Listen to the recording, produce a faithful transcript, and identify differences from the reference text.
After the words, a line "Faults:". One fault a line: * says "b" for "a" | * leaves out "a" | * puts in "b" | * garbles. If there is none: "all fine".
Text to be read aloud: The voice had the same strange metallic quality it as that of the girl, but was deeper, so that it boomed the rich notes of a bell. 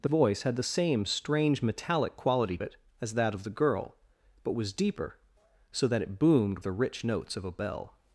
The voice had the same strange metallic quality it as that of the girl, but was deeper, so that it boomed the rich notes of a bell.
Faults:
all fine